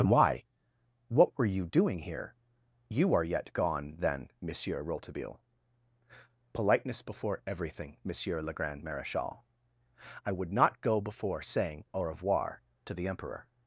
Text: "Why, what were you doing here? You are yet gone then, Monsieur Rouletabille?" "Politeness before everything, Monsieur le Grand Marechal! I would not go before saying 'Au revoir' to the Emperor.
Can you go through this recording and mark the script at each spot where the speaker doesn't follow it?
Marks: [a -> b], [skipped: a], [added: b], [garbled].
"Why, what were you doing here? You are yet gone then, Monsieur Rouletabille?" "Politeness before everything, Monsieur le Grand Marechal! I would not go before saying 'Au revoir' to the Emperor.